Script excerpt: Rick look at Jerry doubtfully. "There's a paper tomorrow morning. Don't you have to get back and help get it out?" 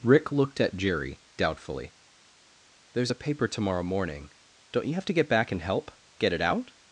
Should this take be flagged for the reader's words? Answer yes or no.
yes